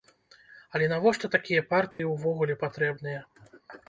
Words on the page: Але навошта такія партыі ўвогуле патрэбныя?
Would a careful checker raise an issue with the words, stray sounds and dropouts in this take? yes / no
yes